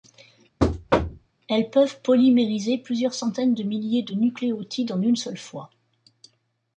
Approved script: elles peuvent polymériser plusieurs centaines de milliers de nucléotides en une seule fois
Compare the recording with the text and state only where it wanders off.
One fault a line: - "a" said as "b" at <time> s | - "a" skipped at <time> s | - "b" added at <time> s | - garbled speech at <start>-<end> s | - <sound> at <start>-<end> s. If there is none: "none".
- thud at 0.6-1.3 s